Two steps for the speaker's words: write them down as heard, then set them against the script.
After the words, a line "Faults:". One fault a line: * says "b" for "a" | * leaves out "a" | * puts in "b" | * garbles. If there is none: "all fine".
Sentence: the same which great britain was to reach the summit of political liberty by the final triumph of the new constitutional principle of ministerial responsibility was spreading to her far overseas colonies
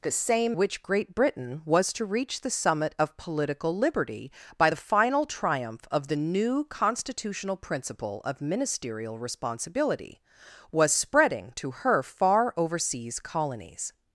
the same which great britain was to reach the summit of political liberty by the final triumph of the new constitutional principle of ministerial responsibility was spreading to her far overseas colonies
Faults:
all fine